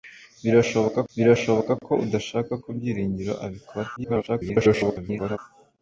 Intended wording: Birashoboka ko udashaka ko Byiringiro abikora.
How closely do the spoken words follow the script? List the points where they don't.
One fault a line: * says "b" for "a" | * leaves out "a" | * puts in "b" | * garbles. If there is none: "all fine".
* puts in "birashoboka"
* garbles